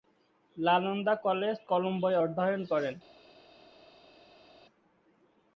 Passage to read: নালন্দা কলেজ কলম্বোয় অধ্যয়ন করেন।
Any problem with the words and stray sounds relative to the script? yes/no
no